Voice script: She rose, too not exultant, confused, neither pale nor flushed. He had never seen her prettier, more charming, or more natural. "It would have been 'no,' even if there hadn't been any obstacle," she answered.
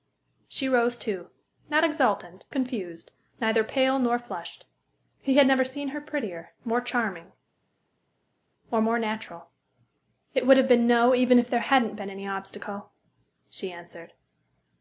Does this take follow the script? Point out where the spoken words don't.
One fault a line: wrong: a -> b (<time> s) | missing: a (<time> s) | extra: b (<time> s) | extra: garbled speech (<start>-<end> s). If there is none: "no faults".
no faults